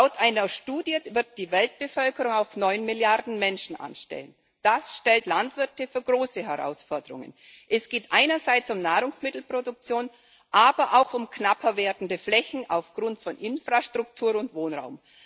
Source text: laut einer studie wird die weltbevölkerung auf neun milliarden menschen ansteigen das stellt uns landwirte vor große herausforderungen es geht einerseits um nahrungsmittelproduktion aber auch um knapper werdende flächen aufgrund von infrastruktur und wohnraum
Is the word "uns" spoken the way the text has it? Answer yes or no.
no